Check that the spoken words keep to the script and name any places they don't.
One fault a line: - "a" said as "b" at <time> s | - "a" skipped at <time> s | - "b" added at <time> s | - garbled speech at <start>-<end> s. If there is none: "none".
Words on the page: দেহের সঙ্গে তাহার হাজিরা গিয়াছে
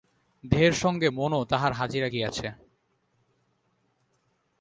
- "মনও" added at 1.1 s